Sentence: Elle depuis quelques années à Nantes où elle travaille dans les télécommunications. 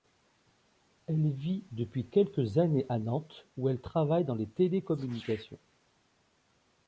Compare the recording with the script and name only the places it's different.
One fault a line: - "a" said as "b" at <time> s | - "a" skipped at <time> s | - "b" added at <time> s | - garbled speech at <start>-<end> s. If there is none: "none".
- "vit" added at 1.3 s